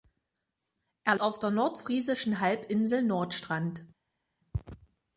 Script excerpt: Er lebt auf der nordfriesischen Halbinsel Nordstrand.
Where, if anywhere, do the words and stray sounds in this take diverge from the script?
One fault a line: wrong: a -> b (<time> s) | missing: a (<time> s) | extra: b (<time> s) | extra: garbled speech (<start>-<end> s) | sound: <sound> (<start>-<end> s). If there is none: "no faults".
missing: lebt (1.1 s)